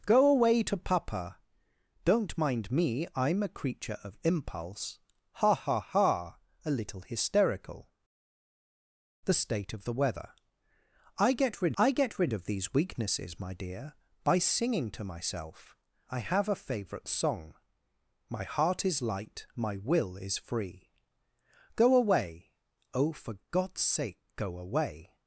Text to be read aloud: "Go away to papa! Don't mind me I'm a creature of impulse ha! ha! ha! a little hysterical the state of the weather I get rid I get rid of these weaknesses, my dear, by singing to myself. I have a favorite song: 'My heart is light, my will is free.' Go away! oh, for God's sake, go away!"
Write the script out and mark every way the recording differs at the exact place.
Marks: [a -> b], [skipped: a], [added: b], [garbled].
"Go away to papa! Don't mind me I'm a creature of impulse ha! ha! ha! a little hysterical the state of the weather I get rid I get rid of these weaknesses, my dear, by singing to myself. I have a favorite song: 'My heart is light, my will is free.' Go away! oh, for God's sake, go away!"